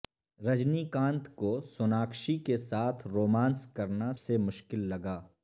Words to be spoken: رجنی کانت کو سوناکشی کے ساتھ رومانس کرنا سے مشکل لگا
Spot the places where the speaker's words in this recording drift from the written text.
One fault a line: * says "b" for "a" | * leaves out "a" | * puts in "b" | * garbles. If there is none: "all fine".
all fine